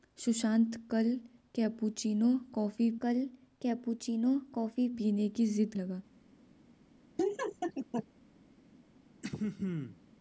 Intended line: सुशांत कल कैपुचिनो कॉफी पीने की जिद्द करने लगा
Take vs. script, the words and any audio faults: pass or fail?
fail